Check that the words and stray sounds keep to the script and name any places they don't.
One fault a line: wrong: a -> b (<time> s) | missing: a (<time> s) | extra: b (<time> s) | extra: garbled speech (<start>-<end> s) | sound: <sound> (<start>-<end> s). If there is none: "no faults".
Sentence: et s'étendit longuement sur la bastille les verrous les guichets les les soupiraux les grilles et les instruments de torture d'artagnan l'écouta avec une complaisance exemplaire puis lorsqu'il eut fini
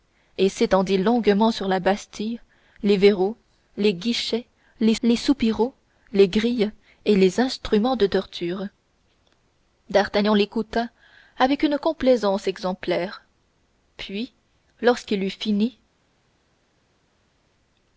no faults